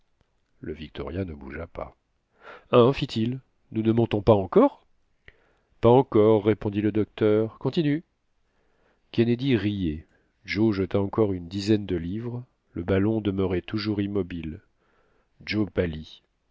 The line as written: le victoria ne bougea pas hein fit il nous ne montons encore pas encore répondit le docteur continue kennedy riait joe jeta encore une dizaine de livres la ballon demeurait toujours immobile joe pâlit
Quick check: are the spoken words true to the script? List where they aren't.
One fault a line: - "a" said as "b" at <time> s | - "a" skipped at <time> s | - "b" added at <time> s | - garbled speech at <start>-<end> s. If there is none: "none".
- "pas" added at 4.2 s
- "la" said as "le" at 12.7 s